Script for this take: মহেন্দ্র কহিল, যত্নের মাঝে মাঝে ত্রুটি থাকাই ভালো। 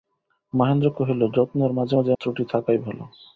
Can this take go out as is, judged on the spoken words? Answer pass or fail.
pass